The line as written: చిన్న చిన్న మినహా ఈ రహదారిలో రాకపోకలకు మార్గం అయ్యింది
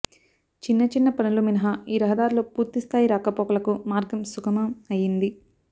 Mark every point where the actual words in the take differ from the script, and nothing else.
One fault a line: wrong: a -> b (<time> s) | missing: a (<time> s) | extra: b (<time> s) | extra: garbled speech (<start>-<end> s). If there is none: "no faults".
extra: పనులు (1.1 s)
extra: పూర్తిస్థాయి (2.5 s)
extra: సుగమం (4.3 s)